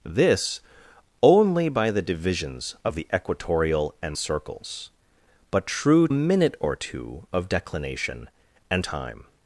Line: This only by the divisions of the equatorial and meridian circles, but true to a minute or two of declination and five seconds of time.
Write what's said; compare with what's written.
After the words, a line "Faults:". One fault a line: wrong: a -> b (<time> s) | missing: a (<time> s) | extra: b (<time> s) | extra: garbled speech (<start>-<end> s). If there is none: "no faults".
This only by the divisions of the equatorial and circles, but true a minute or two of declination and time.
Faults:
missing: meridian (4.2 s)
missing: to (6.1 s)
missing: five seconds of (8.8 s)